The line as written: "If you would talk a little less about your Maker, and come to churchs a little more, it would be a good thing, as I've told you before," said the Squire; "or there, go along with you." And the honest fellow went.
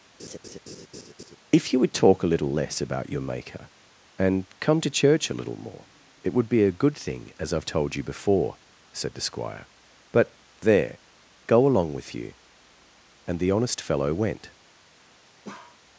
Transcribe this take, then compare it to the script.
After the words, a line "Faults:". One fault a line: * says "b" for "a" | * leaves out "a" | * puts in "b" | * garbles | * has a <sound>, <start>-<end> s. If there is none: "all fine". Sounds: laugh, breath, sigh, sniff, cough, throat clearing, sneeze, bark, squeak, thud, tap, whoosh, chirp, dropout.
"If you would talk a little less about your Maker, and come to church a little more, it would be a good thing, as I've told you before," said the Squire; "but there, go along with you." And the honest fellow went.
Faults:
* has a laugh, 0.2-1.4 s
* says "church" for "churchs"
* says "but" for "or"
* has a bark, 15.4-15.8 s